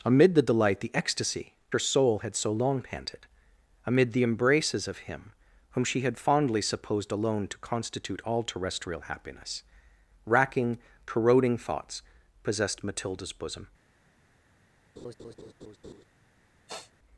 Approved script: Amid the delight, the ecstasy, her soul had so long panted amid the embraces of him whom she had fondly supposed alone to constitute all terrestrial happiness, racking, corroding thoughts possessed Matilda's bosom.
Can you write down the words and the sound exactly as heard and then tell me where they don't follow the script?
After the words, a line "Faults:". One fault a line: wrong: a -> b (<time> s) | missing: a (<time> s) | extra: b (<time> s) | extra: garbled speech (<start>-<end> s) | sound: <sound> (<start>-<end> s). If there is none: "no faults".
Amid the delight, the ecstasy, her soul had so long panted amid the embraces of him whom she had fondly supposed alone to constitute all terrestrial happiness, racking, corroding thoughts possessed Matilda's bosom.
Faults:
sound: laugh (15.0-16.0 s)
sound: sniff (16.7-16.9 s)